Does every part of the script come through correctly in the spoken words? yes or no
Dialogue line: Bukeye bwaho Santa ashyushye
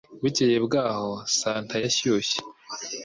yes